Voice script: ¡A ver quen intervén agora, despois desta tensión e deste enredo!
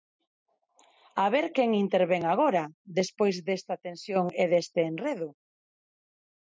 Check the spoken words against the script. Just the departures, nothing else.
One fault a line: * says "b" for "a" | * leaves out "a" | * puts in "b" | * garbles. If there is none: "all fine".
all fine